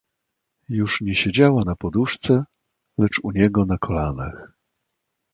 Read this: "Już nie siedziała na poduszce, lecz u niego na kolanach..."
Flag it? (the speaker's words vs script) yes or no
no